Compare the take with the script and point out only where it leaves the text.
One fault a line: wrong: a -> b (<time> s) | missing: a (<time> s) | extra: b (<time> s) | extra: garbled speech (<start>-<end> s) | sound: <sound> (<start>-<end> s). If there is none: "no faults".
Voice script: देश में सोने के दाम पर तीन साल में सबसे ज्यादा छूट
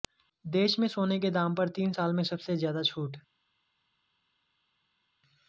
no faults